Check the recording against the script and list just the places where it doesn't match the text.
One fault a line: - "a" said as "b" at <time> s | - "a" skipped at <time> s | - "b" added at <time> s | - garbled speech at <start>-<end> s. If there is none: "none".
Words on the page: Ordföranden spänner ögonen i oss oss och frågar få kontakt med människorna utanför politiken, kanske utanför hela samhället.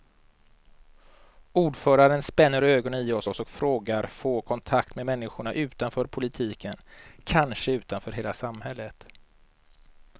none